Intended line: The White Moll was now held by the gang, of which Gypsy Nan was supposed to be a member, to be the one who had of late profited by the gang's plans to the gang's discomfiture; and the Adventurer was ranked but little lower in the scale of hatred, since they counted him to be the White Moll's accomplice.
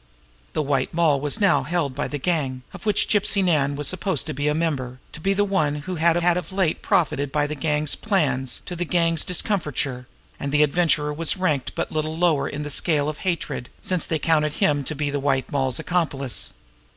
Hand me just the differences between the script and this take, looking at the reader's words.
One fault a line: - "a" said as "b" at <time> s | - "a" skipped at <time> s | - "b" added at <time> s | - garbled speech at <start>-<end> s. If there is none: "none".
- "had" added at 6.2 s